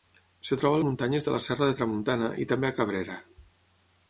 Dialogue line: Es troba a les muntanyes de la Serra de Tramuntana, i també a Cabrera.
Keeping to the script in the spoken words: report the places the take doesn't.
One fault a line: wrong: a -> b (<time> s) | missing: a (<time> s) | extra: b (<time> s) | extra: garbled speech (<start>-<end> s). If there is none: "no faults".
missing: les (0.8 s)